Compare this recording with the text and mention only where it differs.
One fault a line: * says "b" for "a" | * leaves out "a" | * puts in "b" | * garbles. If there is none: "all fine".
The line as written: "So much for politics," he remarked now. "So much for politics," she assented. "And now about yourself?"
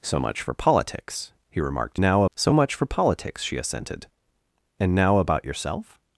all fine